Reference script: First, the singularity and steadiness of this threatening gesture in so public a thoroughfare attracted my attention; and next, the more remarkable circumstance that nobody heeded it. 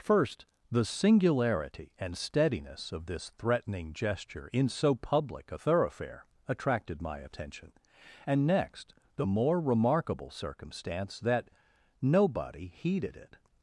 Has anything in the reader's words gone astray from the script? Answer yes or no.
no